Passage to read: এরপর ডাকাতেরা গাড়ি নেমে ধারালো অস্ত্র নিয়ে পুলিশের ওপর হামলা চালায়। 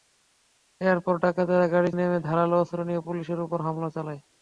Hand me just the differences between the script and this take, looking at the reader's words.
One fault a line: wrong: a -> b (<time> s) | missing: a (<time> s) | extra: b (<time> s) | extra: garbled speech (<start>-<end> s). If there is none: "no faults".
no faults